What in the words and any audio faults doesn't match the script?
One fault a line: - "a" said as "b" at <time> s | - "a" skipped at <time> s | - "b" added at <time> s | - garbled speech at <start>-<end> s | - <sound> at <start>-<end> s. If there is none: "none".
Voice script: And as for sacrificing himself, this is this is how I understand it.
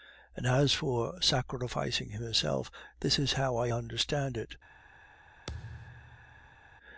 - "this is" skipped at 3.3 s
- thud at 5.5-6.8 s